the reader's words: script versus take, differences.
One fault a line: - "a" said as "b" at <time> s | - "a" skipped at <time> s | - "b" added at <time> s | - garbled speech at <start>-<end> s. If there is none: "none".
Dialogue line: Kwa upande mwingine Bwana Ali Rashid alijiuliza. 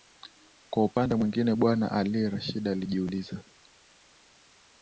none